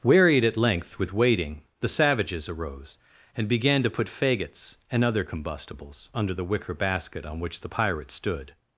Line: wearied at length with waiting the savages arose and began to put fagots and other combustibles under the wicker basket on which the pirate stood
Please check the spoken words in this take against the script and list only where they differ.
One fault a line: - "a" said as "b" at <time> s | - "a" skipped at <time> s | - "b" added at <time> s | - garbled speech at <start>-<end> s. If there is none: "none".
none